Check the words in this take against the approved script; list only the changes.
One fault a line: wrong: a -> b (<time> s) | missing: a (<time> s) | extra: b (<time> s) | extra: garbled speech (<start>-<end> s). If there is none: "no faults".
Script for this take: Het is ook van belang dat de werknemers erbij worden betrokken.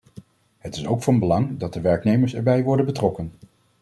no faults